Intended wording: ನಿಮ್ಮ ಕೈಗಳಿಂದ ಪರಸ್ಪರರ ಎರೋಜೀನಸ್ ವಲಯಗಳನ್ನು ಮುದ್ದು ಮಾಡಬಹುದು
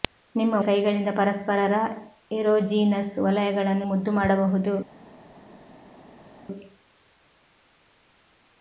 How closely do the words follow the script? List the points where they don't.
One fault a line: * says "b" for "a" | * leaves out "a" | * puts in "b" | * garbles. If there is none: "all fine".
all fine